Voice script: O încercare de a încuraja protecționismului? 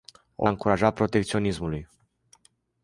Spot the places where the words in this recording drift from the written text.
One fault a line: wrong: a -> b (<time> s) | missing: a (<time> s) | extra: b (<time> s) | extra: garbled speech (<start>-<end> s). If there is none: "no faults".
missing: încercare de (0.5 s)